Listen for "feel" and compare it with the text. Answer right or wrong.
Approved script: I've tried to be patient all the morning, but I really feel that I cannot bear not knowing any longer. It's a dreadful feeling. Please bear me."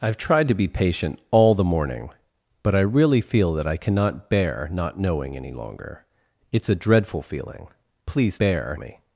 right